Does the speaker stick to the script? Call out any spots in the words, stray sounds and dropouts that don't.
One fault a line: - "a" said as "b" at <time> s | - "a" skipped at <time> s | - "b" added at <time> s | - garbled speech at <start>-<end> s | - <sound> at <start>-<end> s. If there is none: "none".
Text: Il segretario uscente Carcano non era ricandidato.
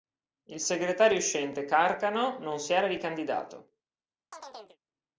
- "si" added at 2.6 s
- chirp at 4.3-4.8 s